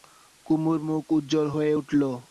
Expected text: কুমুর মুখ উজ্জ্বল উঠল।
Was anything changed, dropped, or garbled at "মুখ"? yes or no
no